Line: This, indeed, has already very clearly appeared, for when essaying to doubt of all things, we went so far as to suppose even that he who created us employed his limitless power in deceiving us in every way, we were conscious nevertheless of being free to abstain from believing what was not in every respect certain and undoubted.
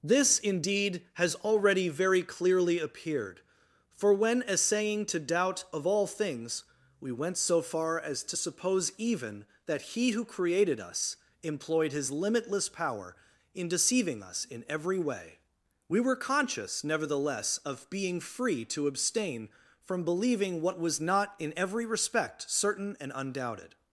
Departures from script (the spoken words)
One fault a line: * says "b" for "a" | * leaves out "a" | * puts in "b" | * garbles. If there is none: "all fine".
all fine